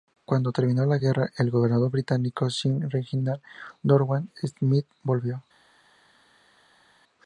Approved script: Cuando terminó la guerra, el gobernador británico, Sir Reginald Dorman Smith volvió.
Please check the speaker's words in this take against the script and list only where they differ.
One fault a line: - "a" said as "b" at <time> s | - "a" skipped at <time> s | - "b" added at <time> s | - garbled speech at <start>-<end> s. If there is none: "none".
none